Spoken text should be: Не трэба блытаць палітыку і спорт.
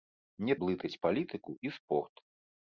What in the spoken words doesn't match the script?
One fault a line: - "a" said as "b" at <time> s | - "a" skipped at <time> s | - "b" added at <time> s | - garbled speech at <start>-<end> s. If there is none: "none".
- "трэба" skipped at 0.5 s